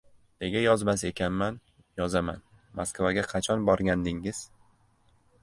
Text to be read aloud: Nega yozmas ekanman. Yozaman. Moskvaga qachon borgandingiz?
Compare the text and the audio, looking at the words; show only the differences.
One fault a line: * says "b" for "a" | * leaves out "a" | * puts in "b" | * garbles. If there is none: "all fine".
all fine